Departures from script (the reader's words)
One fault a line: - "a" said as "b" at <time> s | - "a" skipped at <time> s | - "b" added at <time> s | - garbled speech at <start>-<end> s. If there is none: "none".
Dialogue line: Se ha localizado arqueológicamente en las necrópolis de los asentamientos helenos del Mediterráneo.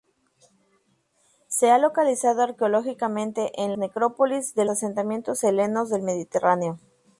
- "las" skipped at 3.8 s
- "los" skipped at 4.6 s